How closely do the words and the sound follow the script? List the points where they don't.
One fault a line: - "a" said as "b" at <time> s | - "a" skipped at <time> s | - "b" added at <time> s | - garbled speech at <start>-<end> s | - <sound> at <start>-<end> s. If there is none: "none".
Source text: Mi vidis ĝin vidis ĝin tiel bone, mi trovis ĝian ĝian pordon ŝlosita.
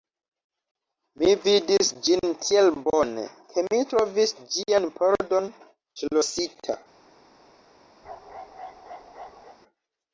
- "vidis ĝin" skipped at 2.3 s
- "ke" added at 3.5 s
- "ĝian" skipped at 4.9 s
- bark at 8.0-9.6 s